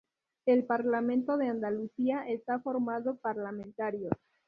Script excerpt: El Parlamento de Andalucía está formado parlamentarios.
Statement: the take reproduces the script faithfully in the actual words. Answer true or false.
true